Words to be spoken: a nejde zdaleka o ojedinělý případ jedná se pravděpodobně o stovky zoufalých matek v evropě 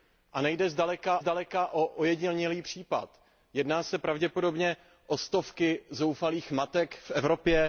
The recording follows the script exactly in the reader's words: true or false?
false